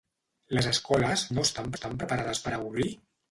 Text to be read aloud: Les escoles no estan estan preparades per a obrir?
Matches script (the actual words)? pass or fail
pass